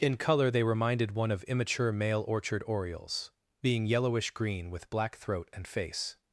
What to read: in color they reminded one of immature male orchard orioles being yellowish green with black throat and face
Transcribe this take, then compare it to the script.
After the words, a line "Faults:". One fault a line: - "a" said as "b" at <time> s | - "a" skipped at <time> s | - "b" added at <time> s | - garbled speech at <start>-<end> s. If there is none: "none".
in color they reminded one of immature male orchard orioles being yellowish green with black throat and face
Faults:
none